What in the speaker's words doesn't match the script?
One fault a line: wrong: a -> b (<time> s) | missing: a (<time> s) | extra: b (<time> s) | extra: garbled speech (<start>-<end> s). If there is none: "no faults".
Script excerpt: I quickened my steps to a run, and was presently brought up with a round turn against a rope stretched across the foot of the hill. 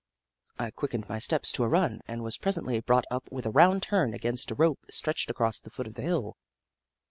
no faults